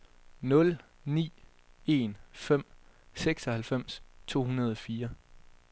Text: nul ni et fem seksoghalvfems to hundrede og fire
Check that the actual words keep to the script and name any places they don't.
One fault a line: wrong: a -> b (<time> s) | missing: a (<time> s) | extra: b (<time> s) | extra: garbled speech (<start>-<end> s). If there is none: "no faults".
wrong: et -> en (1.9 s)